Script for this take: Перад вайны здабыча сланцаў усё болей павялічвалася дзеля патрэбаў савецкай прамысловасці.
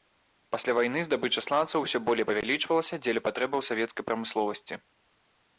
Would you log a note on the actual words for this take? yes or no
yes